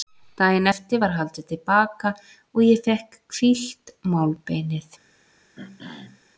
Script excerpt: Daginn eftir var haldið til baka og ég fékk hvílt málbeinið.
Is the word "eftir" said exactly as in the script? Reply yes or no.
yes